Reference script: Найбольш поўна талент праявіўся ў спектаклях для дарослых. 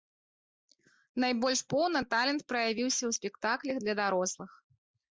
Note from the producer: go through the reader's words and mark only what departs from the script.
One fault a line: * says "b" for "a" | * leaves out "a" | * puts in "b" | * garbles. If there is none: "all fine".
all fine